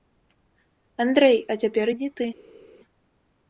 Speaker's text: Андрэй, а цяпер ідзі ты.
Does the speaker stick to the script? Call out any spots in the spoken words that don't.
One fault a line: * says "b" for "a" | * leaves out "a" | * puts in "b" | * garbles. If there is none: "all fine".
all fine